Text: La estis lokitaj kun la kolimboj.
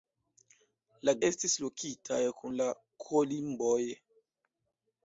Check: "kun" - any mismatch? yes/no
no